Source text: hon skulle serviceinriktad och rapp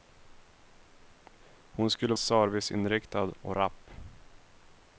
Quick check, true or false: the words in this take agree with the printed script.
true